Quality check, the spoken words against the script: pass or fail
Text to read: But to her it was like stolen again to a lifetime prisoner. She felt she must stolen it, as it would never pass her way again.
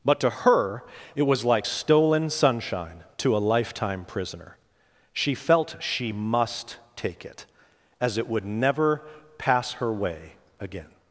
fail